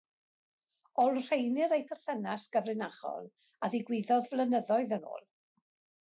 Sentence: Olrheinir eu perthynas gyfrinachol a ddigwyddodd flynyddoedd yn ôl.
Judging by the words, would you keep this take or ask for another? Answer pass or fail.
pass